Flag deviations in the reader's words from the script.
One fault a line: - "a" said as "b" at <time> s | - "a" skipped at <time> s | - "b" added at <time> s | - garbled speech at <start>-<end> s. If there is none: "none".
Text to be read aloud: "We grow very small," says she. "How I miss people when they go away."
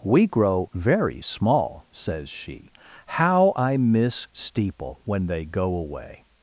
- "people" said as "steeple" at 4.3 s